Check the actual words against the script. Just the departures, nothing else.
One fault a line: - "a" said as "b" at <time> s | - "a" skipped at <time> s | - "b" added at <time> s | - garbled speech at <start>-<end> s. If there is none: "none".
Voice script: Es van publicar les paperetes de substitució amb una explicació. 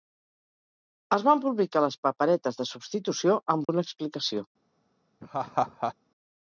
none